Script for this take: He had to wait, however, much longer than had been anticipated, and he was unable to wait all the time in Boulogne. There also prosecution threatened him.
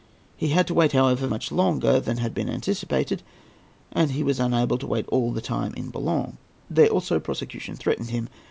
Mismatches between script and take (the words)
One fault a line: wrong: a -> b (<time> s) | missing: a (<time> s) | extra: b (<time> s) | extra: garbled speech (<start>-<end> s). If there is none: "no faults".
no faults